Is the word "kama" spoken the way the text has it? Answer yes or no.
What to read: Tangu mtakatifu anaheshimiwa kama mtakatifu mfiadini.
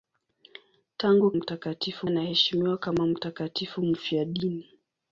yes